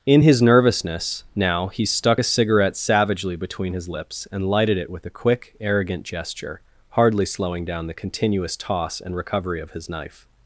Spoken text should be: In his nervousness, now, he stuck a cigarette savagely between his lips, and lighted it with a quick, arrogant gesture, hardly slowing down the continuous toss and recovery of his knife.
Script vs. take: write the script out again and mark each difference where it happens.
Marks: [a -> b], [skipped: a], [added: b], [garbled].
In his nervousness, now, he stuck a cigarette savagely between his lips, and lighted it with a quick, arrogant gesture, hardly slowing down the continuous toss and recovery of his knife.